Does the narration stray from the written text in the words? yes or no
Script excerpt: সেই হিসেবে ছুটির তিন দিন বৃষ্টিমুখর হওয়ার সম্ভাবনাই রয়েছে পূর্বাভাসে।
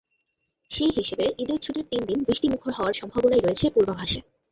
yes